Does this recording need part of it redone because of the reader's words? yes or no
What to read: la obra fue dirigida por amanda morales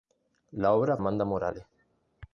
yes